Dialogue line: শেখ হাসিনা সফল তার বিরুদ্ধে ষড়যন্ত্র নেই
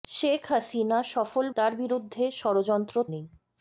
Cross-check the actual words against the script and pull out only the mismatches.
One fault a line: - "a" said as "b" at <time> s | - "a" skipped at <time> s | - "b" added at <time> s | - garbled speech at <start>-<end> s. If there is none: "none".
none